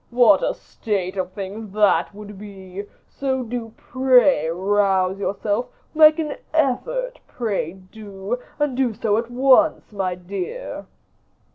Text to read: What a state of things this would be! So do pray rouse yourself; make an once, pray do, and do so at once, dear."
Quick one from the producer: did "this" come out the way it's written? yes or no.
no